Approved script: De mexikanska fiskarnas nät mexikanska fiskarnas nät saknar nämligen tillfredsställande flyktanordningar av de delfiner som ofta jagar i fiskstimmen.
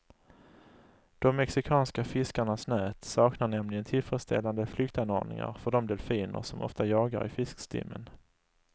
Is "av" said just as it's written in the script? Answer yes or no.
no